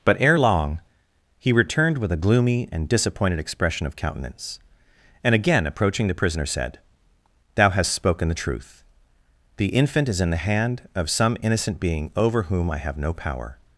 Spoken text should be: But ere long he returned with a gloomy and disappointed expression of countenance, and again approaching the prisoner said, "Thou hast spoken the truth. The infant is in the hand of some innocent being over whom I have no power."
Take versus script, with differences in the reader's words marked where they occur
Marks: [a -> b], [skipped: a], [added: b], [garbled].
But ere long he returned with a gloomy and disappointed expression of countenance, and again approaching the prisoner said, "Thou hast spoken the truth. The infant is in the hand of some innocent being over whom I have no power."